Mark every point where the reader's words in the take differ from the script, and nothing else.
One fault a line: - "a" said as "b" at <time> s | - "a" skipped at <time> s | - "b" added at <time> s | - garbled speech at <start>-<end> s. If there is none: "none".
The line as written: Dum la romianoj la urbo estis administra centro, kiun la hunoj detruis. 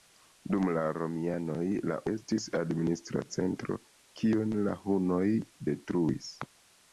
- "urbo" skipped at 2.0 s